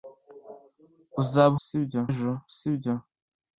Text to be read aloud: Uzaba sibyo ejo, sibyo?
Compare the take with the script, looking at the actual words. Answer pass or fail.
pass